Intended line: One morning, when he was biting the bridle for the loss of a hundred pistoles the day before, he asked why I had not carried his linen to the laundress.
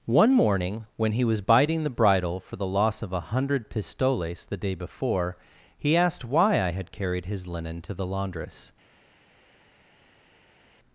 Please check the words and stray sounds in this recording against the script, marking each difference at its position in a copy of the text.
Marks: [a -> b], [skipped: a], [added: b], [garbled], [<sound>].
One morning, when he was biting the bridle for the loss of a hundred pistoles the day before, he asked why I had [skipped: not] carried his linen to the laundress.